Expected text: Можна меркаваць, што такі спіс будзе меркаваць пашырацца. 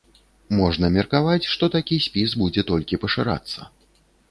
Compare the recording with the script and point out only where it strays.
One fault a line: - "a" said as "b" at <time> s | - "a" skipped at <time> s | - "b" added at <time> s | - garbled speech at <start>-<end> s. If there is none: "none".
- "меркаваць" said as "толькі" at 2.7 s